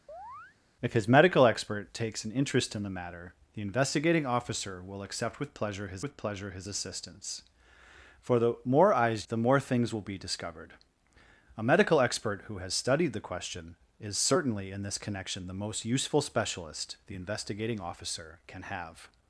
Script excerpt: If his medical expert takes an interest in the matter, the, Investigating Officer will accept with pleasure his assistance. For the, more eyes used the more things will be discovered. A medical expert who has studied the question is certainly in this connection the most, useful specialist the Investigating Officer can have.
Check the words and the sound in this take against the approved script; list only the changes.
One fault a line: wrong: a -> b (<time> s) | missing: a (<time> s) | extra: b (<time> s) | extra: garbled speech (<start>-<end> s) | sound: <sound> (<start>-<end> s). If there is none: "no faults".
sound: chirp (0.1-0.6 s)
extra: with pleasure his (6.0 s)
missing: used (9.3 s)